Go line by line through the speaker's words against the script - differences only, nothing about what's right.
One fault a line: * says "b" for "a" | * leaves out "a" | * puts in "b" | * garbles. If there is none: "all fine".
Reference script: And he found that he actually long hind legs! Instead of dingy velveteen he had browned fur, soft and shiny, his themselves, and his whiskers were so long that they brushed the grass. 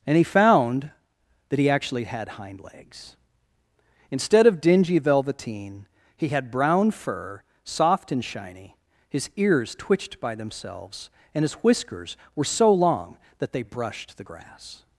* says "had" for "long"
* says "brown" for "browned"
* puts in "ears twitched by"